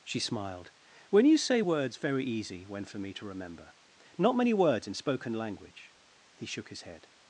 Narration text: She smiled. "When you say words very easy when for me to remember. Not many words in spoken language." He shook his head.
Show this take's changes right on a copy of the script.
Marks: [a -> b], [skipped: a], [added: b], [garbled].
She smiled. "When you say words very easy when for me to remember. Not many words in spoken language." He shook his head.